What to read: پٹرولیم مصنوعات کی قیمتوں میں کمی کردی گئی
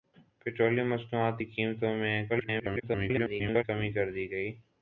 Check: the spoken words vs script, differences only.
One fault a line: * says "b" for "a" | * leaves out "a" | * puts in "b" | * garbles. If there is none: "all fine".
* garbles